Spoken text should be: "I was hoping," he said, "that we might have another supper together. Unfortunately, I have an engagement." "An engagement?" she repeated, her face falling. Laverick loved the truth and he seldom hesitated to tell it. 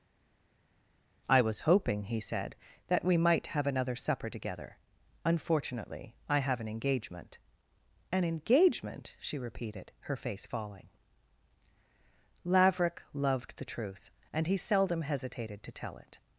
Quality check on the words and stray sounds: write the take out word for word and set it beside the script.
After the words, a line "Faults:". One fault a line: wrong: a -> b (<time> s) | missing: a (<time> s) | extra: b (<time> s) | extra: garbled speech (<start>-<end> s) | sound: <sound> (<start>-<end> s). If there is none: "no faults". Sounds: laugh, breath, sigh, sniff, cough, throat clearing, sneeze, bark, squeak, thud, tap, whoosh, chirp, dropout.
"I was hoping," he said, "that we might have another supper together. Unfortunately, I have an engagement." "An engagement?" she repeated, her face falling. Laverick loved the truth and he seldom hesitated to tell it.
Faults:
no faults